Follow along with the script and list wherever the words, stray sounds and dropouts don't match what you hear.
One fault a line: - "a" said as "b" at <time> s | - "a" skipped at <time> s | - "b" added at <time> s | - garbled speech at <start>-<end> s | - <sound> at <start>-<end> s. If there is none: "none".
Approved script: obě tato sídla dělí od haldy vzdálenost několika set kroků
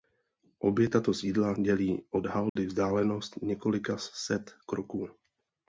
- dropout at 2.5-2.6 s